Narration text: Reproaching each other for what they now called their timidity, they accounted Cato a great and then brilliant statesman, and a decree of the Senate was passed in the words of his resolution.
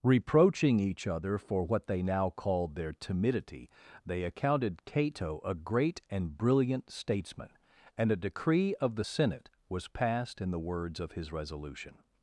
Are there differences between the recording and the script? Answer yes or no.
yes